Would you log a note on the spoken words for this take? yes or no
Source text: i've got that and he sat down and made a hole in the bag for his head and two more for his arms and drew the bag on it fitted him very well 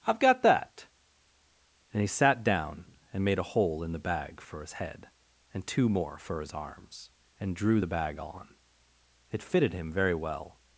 no